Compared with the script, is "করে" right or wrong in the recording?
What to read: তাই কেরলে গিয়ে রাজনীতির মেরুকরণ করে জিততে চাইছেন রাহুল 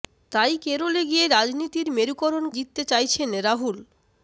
wrong